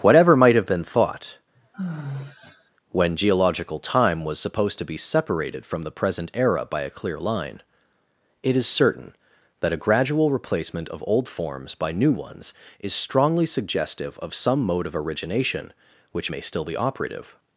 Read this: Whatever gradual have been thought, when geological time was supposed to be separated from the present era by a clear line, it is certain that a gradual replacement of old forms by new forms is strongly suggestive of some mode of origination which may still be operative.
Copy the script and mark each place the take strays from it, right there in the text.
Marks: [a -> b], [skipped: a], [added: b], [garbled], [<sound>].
Whatever [gradual -> might] have been thought, [sigh] when geological time was supposed to be separated from the present era by a clear line, it is certain that a gradual replacement of old forms by new [forms -> ones] is strongly suggestive of some mode of origination which may still be operative.